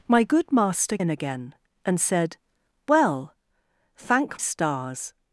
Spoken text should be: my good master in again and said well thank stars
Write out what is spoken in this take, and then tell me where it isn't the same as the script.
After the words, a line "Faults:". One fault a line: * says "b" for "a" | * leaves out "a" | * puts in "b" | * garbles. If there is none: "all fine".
my good master in again and said well thank stars
Faults:
all fine